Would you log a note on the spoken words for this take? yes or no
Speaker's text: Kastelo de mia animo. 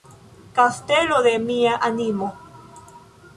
no